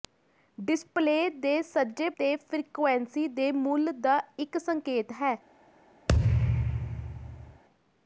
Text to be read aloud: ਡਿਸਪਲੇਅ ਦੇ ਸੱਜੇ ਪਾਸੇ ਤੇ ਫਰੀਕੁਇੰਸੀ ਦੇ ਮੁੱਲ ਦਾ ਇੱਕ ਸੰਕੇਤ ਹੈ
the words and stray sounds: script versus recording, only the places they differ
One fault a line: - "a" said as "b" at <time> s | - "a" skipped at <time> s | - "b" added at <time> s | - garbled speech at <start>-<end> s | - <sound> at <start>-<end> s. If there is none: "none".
- "ਪਾਸੇ" skipped at 2.1 s
- thud at 6.1-7.6 s